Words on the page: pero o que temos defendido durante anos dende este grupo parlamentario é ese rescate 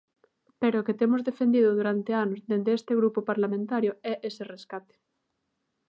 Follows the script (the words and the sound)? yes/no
yes